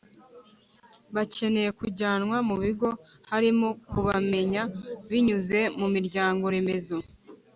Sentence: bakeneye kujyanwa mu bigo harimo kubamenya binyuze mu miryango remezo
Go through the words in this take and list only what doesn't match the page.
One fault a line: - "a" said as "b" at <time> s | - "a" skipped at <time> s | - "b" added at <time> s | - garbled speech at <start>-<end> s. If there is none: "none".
none